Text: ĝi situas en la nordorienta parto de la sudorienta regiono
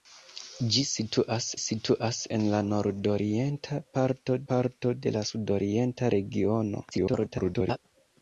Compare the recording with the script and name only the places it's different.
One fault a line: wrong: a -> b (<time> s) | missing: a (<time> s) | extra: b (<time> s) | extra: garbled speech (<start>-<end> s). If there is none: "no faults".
extra: situas (1.6 s)
extra: parto (4.5 s)
extra: garbled speech (6.9-7.8 s)